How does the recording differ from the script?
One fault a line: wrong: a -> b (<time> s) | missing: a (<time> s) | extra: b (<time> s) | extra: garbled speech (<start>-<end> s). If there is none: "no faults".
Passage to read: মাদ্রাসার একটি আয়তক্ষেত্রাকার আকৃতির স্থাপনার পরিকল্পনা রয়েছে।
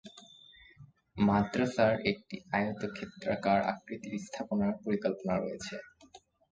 no faults